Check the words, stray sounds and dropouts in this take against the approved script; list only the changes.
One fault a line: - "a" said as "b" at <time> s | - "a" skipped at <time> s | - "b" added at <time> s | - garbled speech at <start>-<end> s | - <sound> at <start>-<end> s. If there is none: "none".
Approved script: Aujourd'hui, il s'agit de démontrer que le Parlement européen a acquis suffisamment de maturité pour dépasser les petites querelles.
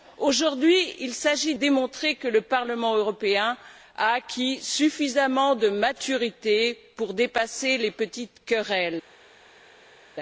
- "de" skipped at 1.6 s